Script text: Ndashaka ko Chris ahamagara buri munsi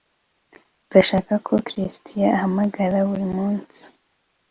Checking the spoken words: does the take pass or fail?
pass